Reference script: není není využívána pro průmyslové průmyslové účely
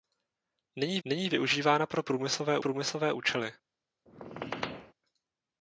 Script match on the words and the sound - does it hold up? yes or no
no